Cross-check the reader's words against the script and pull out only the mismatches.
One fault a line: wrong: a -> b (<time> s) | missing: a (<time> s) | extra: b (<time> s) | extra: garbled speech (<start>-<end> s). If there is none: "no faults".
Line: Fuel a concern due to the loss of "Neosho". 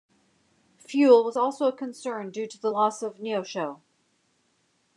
extra: was also (1.2 s)